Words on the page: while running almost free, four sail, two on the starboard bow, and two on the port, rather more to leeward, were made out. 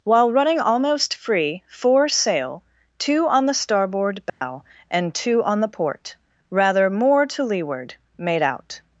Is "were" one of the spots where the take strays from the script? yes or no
yes